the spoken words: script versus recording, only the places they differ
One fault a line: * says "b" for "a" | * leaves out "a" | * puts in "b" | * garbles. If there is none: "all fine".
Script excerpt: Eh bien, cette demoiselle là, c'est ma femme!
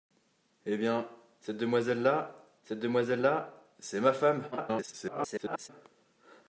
* puts in "cette demoiselle là"
* garbles